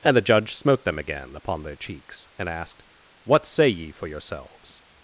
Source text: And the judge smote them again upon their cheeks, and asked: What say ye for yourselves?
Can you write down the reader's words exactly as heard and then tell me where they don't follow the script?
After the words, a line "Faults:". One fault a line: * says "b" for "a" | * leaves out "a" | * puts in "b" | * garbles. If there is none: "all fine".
And the judge smote them again upon their cheeks, and asked: What say ye for yourselves?
Faults:
all fine